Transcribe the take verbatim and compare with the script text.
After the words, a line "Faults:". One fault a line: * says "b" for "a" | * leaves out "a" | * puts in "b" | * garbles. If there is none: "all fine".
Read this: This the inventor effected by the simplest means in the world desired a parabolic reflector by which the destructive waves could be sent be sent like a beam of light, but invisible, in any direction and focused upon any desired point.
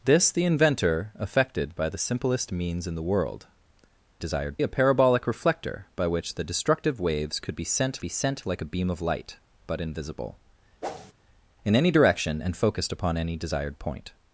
This the inventor effected by the simplest means in the world desired a parabolic reflector by which the destructive waves could be sent be sent like a beam of light, but invisible, in any direction and focused upon any desired point.
Faults:
all fine